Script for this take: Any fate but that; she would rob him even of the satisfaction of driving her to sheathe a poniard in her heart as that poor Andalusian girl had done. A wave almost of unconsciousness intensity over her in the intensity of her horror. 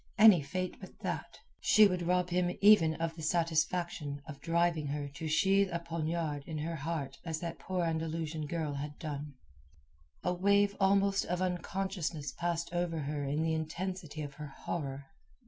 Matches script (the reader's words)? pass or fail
fail